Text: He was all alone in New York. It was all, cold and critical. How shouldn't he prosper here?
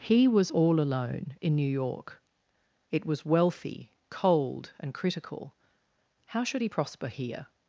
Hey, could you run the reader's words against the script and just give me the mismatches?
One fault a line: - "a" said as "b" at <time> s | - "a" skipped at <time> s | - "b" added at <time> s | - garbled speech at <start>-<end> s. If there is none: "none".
- "all" said as "wealthy" at 3.2 s
- "shouldn't" said as "should" at 6.4 s